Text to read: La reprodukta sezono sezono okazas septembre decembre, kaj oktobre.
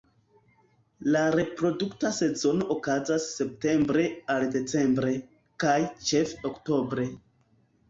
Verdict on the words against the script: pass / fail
fail